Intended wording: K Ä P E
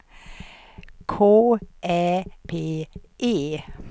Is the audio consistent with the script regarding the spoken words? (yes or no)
yes